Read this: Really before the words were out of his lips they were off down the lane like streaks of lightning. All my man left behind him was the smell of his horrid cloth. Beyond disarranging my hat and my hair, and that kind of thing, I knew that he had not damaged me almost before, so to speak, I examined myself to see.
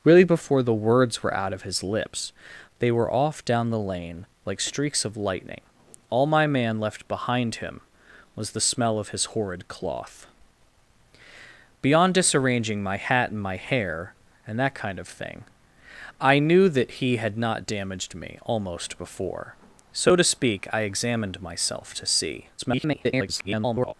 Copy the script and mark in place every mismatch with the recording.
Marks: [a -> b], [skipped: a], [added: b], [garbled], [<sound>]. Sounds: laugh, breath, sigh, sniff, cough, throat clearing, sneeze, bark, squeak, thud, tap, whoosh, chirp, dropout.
Really before the words were out of his lips they were off down the lane like streaks of lightning. All my man left behind him was the smell of his horrid cloth. Beyond disarranging my hat and my hair, and that kind of thing, I knew that he had not damaged me almost before, so to speak, I examined myself to see. [garbled]